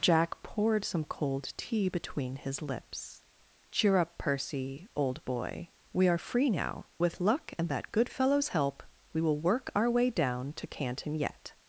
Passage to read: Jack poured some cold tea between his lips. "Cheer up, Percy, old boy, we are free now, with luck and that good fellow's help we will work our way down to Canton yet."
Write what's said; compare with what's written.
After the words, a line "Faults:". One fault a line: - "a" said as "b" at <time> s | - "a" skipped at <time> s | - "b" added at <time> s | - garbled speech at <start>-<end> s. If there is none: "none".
Jack poured some cold tea between his lips. "Cheer up, Percy, old boy, we are free now, with luck and that good fellow's help we will work our way down to Canton yet."
Faults:
none